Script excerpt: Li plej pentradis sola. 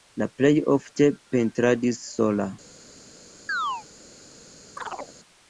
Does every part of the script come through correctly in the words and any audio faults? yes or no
no